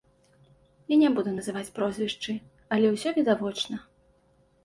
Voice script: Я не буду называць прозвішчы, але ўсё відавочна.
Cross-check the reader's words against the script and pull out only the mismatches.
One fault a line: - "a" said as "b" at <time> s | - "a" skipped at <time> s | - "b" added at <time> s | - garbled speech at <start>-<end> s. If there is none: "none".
none